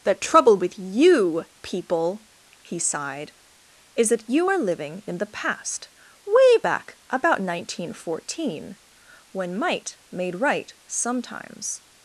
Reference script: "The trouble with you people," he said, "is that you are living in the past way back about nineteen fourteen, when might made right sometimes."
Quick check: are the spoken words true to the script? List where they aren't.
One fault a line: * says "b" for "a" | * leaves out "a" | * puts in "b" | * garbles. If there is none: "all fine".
* says "sighed" for "said"